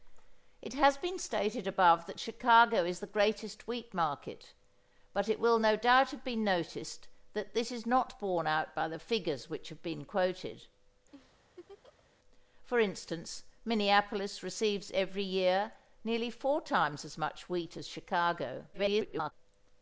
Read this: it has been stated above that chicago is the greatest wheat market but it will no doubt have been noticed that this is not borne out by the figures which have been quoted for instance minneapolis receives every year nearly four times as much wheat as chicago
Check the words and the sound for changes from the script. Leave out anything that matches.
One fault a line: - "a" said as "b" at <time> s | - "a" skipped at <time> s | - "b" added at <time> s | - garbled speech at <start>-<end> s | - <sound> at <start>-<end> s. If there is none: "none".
- laugh at 11.1-12.1 s
- garbled speech at 18.7-19.3 s